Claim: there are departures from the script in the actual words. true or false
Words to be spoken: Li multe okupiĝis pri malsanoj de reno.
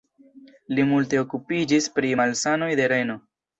false